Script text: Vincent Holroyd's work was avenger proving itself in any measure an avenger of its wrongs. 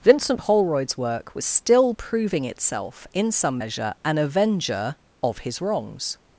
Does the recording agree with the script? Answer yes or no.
no